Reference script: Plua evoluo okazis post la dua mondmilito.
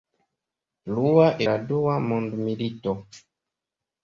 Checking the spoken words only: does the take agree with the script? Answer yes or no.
no